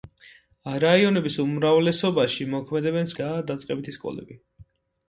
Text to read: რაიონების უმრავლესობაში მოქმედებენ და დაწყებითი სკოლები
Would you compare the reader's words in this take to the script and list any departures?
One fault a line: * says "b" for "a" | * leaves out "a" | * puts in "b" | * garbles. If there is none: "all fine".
all fine